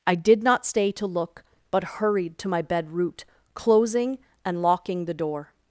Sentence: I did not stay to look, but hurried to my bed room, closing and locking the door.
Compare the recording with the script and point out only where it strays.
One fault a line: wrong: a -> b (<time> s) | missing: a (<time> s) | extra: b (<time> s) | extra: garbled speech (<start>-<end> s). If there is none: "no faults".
wrong: room -> root (2.9 s)